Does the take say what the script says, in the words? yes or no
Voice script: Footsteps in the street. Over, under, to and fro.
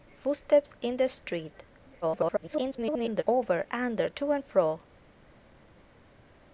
no